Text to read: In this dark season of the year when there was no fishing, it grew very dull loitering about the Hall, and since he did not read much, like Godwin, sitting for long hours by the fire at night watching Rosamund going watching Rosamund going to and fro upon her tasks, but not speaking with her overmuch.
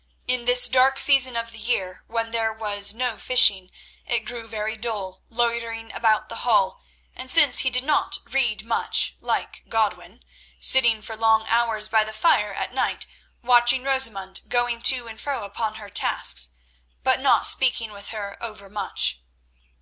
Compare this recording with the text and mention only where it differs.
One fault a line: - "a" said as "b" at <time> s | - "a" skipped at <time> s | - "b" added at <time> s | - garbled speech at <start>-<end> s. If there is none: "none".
- "watching Rosamund going" skipped at 14.8 s